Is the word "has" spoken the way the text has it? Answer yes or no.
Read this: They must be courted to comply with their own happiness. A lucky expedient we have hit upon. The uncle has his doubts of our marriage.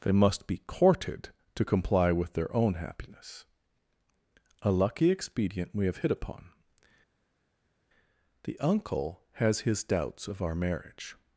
yes